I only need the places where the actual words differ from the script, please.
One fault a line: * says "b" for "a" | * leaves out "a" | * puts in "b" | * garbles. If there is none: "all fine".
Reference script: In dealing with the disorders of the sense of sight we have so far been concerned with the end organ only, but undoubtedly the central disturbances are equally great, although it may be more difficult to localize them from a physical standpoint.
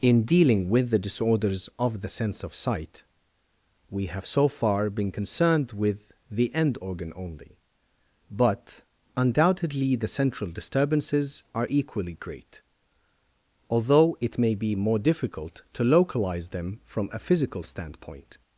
all fine